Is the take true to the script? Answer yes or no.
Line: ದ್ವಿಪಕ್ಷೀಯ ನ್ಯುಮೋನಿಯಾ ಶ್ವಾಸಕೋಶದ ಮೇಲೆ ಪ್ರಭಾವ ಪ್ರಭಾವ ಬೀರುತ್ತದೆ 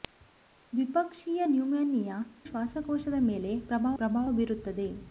yes